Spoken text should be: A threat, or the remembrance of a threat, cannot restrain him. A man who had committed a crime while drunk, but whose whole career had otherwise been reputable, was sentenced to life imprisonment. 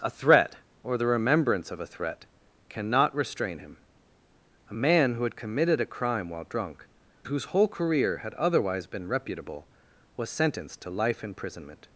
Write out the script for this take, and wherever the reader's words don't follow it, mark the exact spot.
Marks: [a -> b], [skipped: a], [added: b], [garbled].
A threat, or the remembrance of a threat, cannot restrain him. A man who had committed a crime while drunk, [skipped: but] whose whole career had otherwise been reputable, was sentenced to life imprisonment.